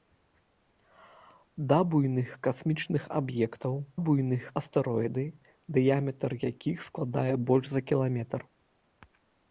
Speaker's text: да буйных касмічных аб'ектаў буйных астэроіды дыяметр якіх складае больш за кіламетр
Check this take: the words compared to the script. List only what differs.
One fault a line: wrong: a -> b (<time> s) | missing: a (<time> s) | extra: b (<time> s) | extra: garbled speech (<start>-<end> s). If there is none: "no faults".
no faults